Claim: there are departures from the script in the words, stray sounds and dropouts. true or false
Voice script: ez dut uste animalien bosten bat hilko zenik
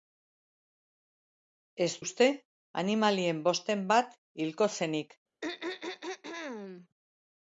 true